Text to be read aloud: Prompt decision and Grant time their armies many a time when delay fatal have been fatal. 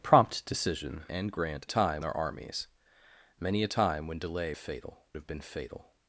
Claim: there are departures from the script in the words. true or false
false